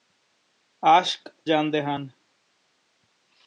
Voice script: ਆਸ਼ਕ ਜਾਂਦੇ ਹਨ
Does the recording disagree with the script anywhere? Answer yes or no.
no